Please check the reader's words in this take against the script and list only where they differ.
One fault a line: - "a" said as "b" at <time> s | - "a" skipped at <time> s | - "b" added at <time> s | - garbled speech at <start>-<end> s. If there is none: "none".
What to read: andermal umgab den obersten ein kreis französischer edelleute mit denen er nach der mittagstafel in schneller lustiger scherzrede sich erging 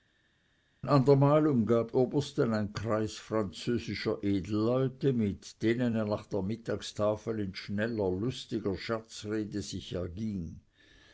- "den" skipped at 1.9 s